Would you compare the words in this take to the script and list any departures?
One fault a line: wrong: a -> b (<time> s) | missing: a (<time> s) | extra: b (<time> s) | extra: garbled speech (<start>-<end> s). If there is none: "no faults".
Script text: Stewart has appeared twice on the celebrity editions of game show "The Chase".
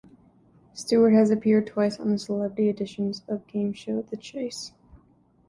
no faults